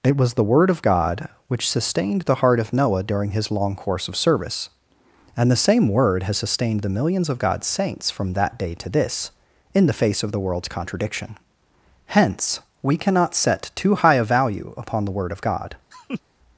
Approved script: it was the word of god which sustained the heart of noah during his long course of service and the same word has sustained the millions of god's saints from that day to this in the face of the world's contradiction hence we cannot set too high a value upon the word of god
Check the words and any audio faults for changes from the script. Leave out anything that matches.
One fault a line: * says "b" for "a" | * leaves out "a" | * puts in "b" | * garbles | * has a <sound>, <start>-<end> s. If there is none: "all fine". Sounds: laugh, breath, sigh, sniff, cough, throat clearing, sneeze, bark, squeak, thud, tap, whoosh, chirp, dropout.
* has a laugh, 15.9-16.2 s